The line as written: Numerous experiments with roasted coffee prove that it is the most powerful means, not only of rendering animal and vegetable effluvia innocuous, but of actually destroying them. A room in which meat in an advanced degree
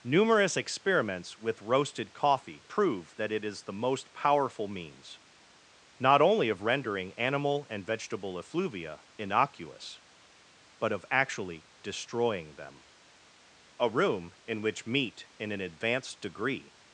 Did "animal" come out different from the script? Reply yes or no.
no